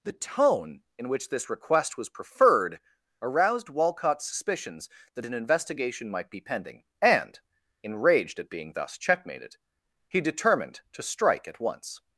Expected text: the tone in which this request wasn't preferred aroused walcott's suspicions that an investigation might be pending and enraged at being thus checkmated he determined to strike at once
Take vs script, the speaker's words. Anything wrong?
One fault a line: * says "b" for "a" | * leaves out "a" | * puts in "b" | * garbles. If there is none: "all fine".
* says "was" for "wasn't"